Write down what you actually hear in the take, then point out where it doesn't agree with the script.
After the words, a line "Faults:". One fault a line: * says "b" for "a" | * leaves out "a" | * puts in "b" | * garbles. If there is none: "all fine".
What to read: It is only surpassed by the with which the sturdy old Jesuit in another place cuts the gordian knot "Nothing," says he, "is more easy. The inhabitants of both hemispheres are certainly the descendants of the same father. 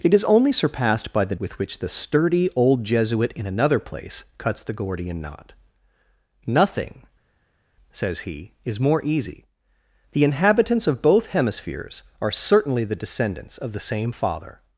It is only surpassed by the with which the sturdy old Jesuit in another place cuts the gordian knot "Nothing," says he, "is more easy. The inhabitants of both hemispheres are certainly the descendants of the same father.
Faults:
all fine